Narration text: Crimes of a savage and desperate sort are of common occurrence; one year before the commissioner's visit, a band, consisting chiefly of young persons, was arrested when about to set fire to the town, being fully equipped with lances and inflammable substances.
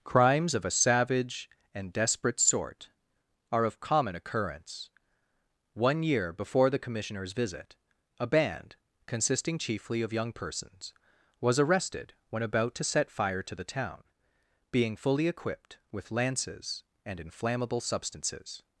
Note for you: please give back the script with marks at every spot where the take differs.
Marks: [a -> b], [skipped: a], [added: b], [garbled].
Crimes of a savage and desperate sort are of common occurrence; one year before the commissioner's visit, a band, consisting chiefly of young persons, was arrested when about to set fire to the town, being fully equipped with lances and inflammable substances.